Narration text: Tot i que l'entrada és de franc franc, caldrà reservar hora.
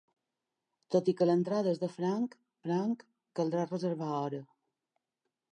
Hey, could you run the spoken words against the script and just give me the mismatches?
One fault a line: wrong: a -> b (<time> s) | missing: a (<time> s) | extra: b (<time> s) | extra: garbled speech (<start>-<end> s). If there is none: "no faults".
no faults